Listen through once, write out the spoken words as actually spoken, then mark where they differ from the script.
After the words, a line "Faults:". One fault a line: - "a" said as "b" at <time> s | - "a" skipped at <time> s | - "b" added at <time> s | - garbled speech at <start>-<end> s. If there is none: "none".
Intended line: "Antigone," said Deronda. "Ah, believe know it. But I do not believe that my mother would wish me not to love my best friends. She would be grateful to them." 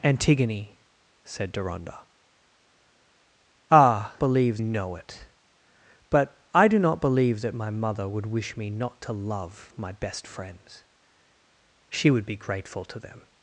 "Antigone," said Deronda. "Ah, believe know it. But I do not believe that my mother would wish me not to love my best friends. She would be grateful to them."
Faults:
none